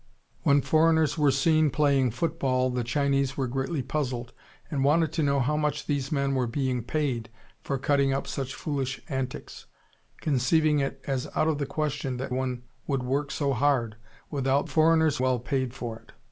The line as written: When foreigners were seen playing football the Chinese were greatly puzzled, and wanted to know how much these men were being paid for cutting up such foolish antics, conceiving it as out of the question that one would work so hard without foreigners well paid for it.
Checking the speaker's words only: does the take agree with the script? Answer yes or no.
yes